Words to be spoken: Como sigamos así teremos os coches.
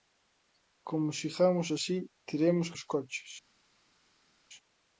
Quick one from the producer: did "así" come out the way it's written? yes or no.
yes